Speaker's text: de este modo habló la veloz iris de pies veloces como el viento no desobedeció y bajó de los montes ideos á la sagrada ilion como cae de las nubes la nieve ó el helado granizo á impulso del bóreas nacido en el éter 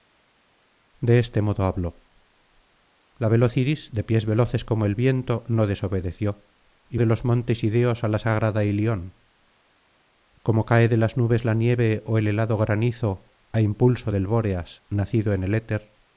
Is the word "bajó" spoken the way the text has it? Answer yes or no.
no